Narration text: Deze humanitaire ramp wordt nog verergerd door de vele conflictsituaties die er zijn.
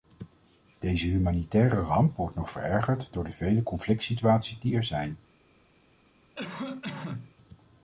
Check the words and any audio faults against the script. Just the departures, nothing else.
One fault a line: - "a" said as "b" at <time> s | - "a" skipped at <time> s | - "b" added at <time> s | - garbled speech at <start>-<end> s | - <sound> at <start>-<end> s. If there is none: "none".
- cough at 6.3-7.3 s